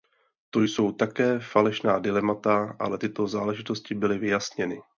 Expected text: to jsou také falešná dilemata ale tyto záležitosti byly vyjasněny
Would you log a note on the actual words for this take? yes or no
no